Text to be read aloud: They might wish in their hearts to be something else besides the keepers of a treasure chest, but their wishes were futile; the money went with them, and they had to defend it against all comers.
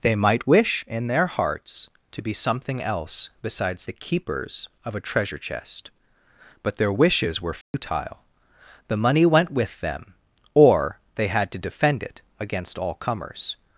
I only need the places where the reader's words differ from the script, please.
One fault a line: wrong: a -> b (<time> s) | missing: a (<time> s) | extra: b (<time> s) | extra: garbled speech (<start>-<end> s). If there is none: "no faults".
wrong: and -> or (10.5 s)